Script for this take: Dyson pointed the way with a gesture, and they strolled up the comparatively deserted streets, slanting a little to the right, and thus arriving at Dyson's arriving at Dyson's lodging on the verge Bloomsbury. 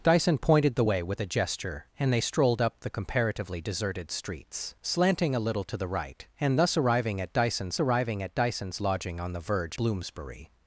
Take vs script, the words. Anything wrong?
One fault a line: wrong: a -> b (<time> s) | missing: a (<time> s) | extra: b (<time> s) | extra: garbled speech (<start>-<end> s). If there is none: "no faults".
no faults